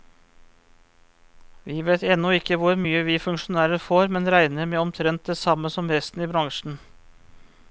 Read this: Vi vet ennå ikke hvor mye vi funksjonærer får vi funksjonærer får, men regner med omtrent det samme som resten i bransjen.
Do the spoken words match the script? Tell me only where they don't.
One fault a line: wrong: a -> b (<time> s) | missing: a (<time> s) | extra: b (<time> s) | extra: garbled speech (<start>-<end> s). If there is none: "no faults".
missing: vi funksjonærer får (4.1 s)